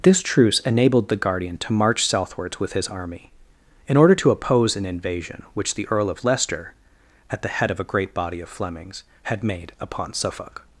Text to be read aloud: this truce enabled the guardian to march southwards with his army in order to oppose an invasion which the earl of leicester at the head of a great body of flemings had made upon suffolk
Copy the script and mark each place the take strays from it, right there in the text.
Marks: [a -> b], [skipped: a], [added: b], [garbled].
this truce enabled the guardian to march southwards with his army in order to oppose an invasion which the earl of leicester at the head of a great body of flemings had made upon suffolk